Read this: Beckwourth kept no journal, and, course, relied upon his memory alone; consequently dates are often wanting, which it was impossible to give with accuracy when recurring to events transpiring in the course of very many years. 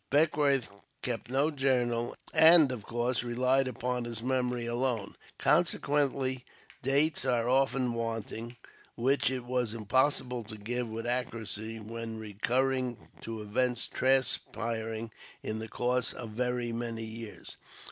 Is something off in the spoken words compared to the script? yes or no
yes